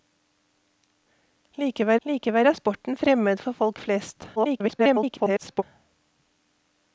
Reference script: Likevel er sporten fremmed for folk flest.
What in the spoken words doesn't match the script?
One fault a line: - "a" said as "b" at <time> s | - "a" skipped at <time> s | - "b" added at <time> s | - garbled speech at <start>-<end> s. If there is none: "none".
- "likevel" added at 2.0 s
- garbled speech at 4.4-5.6 s